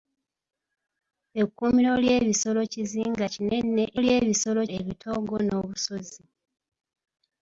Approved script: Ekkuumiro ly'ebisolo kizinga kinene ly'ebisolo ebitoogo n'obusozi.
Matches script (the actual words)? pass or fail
pass